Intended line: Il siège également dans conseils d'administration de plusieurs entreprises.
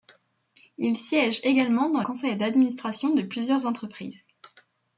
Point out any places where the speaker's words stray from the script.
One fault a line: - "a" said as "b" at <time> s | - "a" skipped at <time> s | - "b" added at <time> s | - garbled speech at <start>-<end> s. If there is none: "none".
none